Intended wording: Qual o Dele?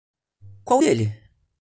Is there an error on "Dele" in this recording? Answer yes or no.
no